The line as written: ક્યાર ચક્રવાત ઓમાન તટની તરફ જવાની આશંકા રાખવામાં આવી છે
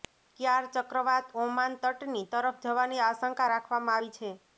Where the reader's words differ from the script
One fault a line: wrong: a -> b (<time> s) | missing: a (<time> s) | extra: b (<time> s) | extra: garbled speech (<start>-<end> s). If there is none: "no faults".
no faults